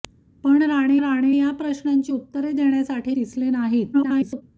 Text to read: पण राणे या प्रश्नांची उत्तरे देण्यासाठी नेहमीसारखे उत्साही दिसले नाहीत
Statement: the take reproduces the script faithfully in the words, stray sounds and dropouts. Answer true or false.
false